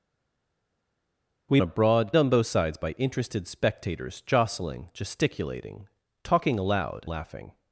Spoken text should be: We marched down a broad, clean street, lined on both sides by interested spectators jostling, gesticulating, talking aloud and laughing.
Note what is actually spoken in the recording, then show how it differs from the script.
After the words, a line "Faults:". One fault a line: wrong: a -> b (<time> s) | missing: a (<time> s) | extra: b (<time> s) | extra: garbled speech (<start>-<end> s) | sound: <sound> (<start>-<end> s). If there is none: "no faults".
We a broad, on both sides by interested spectators jostling, gesticulating, talking aloud laughing.
Faults:
missing: marched down (1.6 s)
missing: clean street lined (2.1 s)
missing: and (7.1 s)